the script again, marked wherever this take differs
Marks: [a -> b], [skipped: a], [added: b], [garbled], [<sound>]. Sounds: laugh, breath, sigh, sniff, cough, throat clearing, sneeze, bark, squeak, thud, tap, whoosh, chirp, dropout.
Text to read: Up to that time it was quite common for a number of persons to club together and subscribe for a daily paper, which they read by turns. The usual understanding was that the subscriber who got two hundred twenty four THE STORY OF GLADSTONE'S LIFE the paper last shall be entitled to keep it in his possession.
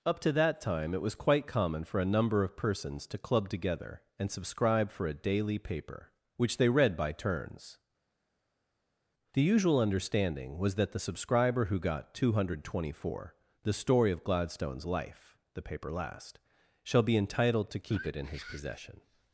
Up to that time it was quite common for a number of persons to club together and subscribe for a daily paper, which they read by turns. The usual understanding was that the subscriber who got two hundred twenty four THE STORY OF GLADSTONE'S LIFE the paper last shall be entitled to keep it in his possession.